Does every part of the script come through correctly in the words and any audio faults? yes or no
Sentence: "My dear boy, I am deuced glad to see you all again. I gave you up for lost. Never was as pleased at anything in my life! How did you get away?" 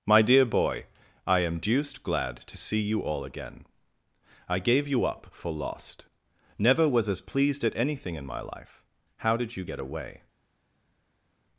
yes